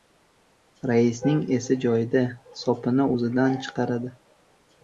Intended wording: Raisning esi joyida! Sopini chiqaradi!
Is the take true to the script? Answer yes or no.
no